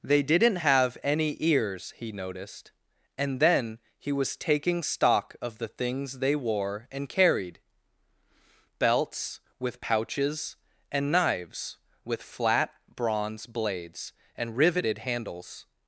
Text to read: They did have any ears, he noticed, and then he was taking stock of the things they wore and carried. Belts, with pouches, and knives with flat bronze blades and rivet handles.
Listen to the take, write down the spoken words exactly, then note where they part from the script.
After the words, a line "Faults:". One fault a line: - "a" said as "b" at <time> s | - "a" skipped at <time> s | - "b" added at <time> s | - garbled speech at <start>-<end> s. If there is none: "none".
They didn't have any ears, he noticed, and then he was taking stock of the things they wore and carried. Belts, with pouches, and knives with flat bronze blades and riveted handles.
Faults:
- "did" said as "didn't" at 0.2 s
- "rivet" said as "riveted" at 14.6 s